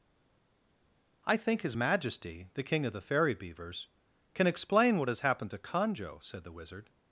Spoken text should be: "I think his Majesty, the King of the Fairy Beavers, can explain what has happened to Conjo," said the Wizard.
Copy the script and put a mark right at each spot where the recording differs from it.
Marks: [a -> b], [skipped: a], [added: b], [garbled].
"I think his Majesty, the King of the Fairy Beavers, can explain what has happened to Conjo," said the Wizard.